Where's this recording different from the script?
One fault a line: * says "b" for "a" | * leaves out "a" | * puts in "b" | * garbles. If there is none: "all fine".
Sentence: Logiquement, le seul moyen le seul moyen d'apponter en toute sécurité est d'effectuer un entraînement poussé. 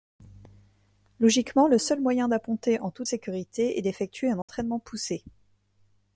* leaves out "le seul moyen"